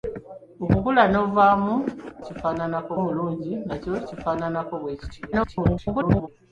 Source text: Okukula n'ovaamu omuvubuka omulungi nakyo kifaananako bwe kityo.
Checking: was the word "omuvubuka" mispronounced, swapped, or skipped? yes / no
yes